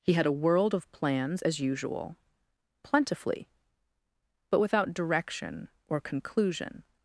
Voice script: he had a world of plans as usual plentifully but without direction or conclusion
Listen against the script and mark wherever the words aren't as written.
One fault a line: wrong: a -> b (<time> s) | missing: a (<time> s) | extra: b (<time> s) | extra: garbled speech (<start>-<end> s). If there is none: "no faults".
no faults